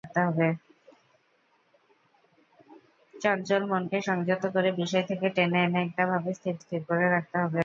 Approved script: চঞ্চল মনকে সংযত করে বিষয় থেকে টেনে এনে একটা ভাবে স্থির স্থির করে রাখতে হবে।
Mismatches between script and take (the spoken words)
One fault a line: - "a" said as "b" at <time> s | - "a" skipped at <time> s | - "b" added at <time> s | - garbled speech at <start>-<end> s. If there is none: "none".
none